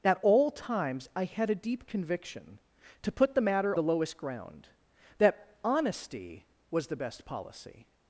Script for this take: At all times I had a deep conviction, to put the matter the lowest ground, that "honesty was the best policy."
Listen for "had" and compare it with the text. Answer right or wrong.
right